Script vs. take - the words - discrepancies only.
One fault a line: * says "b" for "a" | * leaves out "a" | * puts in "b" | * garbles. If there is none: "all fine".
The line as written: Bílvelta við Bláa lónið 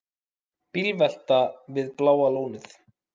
all fine